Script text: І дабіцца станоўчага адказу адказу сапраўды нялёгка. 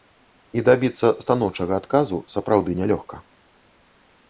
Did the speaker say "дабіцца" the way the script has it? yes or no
yes